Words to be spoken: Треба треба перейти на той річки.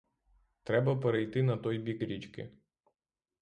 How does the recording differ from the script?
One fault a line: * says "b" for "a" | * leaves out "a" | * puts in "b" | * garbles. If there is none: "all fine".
* leaves out "треба"
* puts in "бік"